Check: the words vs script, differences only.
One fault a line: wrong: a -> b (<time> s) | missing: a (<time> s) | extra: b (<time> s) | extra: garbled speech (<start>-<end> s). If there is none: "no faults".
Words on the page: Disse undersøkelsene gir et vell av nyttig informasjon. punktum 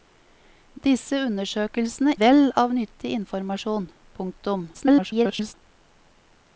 missing: gir et (2.1 s)
extra: garbled speech (4.7-5.5 s)